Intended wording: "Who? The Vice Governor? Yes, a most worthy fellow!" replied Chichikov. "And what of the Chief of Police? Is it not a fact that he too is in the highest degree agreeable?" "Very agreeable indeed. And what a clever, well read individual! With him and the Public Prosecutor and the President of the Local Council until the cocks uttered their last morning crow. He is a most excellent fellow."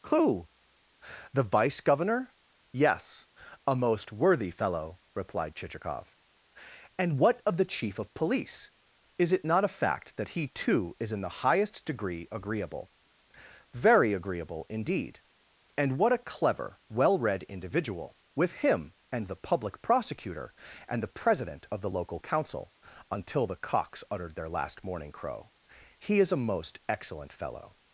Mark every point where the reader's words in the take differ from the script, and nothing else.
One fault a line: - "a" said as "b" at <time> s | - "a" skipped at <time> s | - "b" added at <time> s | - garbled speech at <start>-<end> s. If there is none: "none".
none